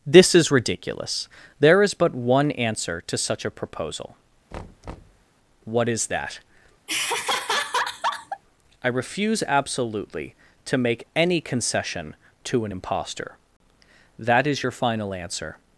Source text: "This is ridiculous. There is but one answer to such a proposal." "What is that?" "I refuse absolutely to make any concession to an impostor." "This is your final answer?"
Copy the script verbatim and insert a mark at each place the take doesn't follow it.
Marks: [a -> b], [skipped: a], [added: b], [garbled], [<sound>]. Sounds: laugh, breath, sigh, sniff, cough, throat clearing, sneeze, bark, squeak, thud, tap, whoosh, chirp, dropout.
"This is ridiculous. There is but one answer to such a proposal." [thud] "What is that?" [laugh] "I refuse absolutely to make any concession to an impostor." ["This -> That] is your final answer?"